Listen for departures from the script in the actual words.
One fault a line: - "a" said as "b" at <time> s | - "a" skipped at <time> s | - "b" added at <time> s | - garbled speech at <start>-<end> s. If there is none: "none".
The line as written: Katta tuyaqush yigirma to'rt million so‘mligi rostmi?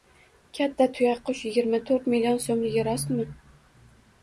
none